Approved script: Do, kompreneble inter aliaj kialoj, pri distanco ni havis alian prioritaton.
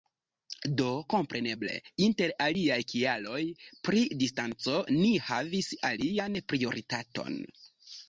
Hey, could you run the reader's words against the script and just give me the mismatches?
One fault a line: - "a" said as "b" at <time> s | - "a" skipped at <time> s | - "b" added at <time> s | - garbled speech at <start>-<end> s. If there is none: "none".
none